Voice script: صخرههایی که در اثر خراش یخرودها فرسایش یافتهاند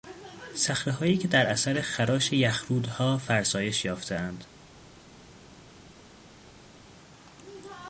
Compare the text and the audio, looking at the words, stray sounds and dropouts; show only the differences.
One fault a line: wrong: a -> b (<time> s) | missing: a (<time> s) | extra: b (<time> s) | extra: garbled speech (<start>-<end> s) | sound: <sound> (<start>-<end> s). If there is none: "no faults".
no faults